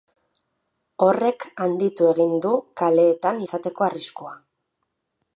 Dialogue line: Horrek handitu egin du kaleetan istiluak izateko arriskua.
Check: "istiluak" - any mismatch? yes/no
yes